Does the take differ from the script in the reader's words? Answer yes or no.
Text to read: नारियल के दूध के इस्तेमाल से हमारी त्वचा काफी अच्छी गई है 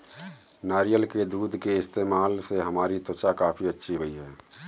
no